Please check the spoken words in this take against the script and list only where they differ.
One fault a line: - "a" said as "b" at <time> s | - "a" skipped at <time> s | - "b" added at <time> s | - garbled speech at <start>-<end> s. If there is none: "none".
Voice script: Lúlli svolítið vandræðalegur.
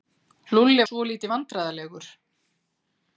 none